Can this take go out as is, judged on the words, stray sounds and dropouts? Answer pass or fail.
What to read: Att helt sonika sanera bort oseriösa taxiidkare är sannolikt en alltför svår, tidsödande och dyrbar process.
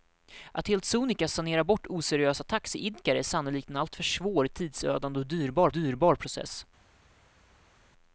fail